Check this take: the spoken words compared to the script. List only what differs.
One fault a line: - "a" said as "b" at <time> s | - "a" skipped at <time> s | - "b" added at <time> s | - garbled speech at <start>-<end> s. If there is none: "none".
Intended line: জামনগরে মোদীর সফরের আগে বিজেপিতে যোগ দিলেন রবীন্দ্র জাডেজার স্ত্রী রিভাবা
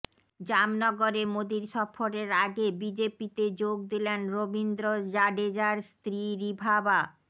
none